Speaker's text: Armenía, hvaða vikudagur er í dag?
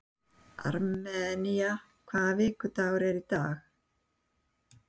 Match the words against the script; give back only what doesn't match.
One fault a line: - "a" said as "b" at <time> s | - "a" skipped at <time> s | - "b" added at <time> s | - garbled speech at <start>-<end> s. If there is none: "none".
none